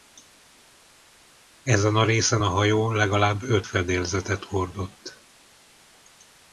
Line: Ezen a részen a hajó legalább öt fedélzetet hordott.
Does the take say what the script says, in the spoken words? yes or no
yes